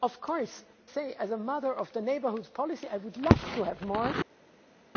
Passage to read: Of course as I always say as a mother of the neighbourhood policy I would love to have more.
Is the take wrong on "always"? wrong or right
wrong